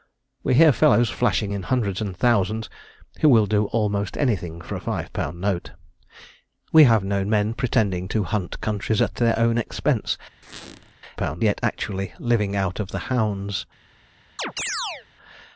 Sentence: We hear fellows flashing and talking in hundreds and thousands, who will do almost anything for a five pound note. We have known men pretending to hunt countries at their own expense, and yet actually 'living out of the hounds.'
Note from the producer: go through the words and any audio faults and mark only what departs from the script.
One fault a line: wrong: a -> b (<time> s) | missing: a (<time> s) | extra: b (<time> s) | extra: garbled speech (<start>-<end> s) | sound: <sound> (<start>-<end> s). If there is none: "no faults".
missing: and talking (1.5 s)
sound: squeak (10.4-10.9 s)
wrong: and -> pound (11.2 s)
sound: chirp (14.4-15.1 s)